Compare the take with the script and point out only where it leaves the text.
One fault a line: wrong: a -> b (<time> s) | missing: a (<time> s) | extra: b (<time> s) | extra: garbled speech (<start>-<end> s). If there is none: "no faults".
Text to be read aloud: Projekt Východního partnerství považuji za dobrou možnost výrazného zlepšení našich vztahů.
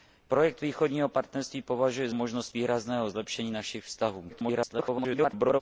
missing: za dobrou (2.1 s)
extra: garbled speech (4.3-5.6 s)